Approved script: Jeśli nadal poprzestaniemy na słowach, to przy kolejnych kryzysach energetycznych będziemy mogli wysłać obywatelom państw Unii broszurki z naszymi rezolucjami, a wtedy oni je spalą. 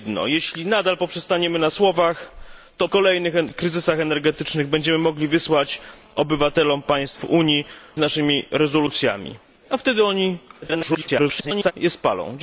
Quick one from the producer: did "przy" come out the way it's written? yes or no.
no